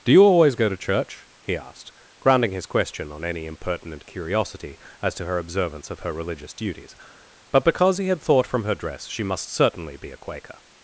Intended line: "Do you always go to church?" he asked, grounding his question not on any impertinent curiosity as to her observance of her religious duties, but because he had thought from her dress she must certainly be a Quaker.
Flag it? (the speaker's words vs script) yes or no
yes